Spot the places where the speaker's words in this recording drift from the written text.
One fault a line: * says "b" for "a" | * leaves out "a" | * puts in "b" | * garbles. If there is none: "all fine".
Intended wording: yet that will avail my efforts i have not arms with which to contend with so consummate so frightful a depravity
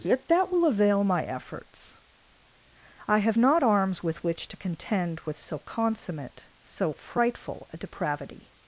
all fine